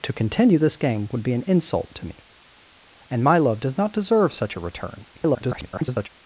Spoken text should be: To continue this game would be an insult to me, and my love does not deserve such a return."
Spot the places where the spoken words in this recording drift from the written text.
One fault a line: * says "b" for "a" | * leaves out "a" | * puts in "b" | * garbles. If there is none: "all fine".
* garbles